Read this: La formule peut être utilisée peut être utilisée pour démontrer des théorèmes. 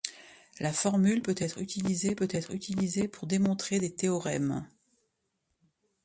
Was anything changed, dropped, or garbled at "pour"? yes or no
no